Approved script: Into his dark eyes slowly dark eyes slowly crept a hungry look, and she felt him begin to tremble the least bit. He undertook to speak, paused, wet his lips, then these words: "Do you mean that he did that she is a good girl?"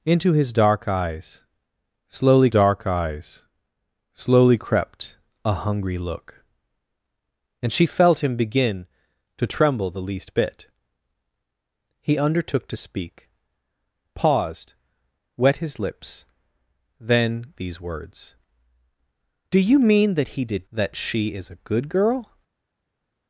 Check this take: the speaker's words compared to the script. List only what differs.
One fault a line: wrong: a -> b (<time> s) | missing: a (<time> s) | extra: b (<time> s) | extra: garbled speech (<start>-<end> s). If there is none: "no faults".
no faults